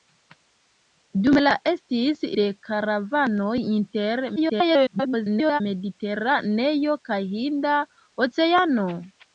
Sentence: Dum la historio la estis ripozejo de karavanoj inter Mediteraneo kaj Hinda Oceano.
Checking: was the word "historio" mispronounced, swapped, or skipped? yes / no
yes